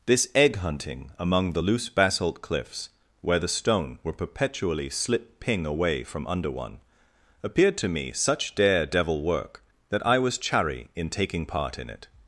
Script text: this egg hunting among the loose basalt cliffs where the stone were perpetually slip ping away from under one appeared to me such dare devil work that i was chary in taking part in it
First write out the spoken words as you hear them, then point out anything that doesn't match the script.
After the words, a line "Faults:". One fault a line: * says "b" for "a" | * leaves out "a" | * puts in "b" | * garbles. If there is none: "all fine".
this egg hunting among the loose basalt cliffs where the stone were perpetually slip ping away from under one appeared to me such dare devil work that i was chary in taking part in it
Faults:
all fine